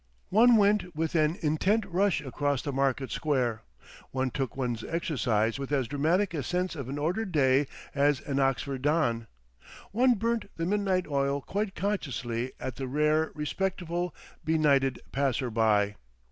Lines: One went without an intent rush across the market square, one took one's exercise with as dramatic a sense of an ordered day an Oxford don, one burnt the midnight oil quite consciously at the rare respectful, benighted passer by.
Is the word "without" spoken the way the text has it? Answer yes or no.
no